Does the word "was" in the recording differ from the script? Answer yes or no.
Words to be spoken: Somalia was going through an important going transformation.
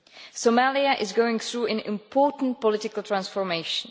yes